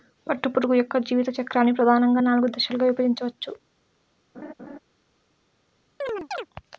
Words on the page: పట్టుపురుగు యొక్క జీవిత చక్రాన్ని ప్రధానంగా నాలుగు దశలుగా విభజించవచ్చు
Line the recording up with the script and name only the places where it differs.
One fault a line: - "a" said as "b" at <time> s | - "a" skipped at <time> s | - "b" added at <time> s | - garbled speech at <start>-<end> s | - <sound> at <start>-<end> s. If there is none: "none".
- laugh at 4.3-4.8 s
- chirp at 6.0-6.5 s